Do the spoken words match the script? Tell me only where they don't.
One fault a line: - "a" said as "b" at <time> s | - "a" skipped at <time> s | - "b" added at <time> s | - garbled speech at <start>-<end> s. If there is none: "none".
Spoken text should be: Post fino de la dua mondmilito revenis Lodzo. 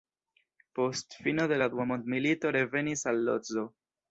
- "al" added at 3.1 s